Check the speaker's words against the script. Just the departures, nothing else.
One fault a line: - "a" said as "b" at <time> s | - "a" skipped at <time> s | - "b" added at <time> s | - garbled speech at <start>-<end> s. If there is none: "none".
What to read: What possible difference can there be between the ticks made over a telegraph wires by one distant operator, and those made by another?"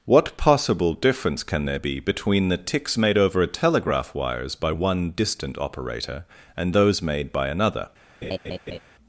none